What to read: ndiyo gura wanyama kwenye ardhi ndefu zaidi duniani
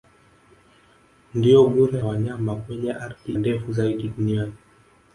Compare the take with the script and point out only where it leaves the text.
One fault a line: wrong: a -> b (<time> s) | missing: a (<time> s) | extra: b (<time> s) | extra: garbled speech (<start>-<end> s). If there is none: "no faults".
no faults